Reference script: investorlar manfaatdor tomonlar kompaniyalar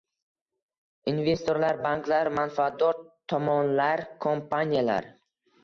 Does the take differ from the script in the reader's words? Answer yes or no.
yes